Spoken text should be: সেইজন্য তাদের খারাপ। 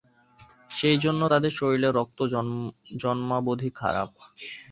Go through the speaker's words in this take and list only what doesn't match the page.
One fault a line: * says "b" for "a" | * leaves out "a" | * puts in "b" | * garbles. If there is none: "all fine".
* puts in "শরীরের রক্ত জন্মাবধি"